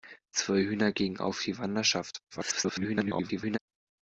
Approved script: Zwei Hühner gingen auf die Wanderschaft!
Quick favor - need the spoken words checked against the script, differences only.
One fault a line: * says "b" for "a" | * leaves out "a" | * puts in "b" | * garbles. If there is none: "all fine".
* garbles